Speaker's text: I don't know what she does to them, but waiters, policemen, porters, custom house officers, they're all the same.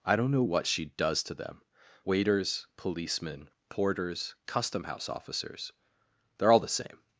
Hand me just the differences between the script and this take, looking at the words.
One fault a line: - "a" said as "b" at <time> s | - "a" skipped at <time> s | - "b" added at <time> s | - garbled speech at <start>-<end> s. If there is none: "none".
- "but" skipped at 1.6 s